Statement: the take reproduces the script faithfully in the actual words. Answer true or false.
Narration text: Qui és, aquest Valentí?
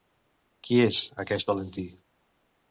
true